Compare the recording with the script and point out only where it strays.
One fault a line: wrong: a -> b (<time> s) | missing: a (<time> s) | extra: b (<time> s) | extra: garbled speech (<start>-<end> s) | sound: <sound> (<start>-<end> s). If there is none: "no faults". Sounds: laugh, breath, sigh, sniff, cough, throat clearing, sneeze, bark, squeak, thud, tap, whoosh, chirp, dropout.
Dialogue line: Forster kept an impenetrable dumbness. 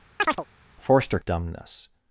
sound: chirp (0.2-0.4 s)
missing: kept an impenetrable (1.2 s)